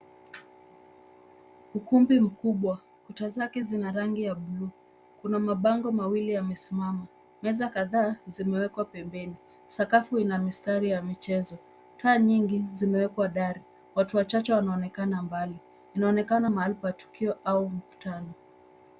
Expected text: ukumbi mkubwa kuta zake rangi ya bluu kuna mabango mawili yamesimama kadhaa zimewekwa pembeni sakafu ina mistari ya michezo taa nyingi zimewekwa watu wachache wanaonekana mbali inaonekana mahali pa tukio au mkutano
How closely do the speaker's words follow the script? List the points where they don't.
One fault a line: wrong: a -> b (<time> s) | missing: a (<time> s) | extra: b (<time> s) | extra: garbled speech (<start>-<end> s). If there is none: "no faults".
extra: zina (3.6 s)
extra: meza (7.4 s)
extra: dari (13.3 s)